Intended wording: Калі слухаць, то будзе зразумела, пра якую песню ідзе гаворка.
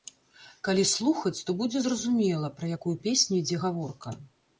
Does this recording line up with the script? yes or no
yes